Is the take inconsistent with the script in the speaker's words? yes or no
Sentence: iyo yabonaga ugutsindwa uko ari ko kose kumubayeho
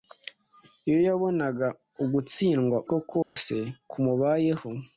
yes